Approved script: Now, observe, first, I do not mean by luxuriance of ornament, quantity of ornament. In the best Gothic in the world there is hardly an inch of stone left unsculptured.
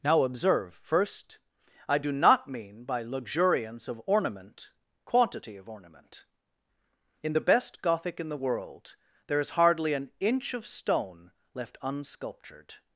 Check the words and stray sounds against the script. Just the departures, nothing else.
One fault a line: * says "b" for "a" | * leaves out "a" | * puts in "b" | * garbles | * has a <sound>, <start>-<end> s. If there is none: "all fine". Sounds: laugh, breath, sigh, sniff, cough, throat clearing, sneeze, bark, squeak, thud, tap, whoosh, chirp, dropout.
all fine